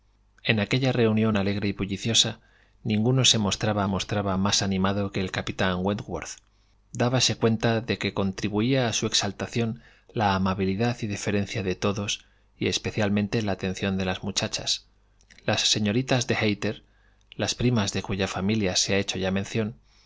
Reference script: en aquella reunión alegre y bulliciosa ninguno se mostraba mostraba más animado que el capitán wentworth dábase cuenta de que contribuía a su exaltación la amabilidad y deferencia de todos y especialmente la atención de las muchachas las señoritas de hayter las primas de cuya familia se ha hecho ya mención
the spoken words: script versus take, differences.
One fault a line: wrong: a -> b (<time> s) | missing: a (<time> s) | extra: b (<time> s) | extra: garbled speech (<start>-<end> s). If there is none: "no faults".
no faults